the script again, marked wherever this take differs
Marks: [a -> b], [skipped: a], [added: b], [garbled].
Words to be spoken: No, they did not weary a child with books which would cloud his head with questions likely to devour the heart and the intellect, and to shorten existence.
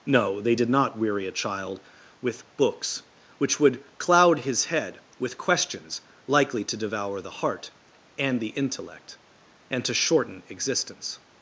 No, they did not weary a child with books which would cloud his head with questions likely to devour the heart and the intellect, and to shorten existence.